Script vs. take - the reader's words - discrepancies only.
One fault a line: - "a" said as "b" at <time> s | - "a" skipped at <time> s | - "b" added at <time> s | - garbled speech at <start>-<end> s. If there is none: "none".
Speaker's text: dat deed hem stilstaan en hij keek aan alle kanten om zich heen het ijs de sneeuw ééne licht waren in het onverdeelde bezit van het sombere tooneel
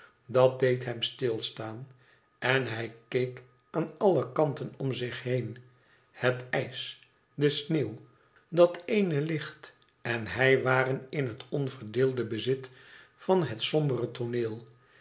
- "dat" added at 8.5 s
- "en hij" added at 10.0 s